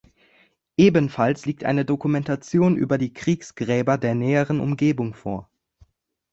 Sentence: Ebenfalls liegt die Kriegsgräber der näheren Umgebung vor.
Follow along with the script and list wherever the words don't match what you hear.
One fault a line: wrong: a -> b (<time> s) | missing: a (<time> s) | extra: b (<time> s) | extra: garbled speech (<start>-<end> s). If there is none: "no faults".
extra: eine Dokumentation über (1.6 s)